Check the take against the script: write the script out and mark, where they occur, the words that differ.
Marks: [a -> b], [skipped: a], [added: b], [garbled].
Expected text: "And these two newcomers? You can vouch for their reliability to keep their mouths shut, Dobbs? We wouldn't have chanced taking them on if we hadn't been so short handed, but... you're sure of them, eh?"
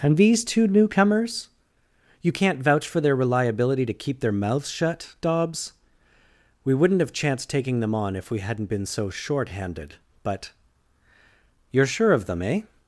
"And these two newcomers? You [can -> can't] vouch for their reliability to keep their mouths shut, Dobbs? We wouldn't have chanced taking them on if we hadn't been so short handed, but... you're sure of them, eh?"